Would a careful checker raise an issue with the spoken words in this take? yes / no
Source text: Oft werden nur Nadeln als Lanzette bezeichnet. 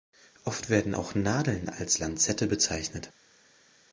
yes